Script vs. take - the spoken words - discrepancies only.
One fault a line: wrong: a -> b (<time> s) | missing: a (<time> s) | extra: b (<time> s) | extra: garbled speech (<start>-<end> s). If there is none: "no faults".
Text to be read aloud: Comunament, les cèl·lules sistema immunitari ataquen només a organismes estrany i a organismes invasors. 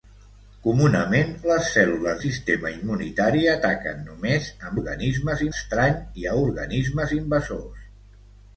no faults